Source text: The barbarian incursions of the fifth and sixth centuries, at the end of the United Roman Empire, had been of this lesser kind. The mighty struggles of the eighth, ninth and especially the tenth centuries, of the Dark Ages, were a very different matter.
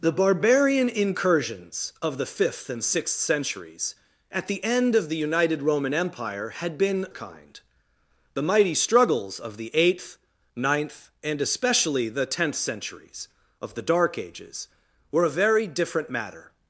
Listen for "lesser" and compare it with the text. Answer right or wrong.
wrong